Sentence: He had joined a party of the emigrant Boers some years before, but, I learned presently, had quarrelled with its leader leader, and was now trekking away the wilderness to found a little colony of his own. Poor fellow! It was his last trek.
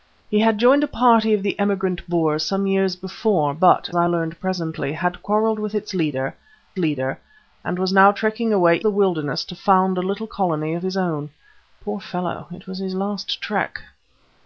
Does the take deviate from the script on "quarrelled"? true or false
false